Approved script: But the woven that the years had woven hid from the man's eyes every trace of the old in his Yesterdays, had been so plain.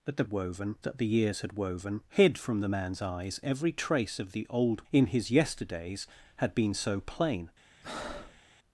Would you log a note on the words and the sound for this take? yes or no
yes